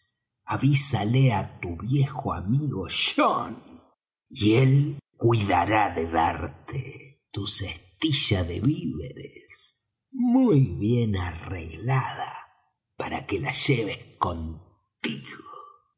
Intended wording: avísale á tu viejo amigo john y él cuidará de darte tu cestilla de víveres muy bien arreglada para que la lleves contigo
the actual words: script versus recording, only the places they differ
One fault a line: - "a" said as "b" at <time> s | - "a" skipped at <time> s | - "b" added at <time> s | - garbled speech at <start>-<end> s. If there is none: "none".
none